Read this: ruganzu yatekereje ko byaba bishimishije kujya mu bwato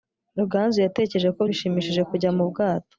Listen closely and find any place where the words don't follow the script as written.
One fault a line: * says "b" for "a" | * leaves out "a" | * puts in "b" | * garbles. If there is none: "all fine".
* leaves out "byaba"